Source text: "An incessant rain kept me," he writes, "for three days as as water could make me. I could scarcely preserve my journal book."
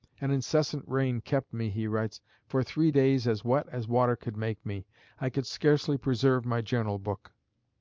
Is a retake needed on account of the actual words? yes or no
yes